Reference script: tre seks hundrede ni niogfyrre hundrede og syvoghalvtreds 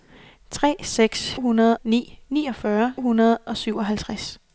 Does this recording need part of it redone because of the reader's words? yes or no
no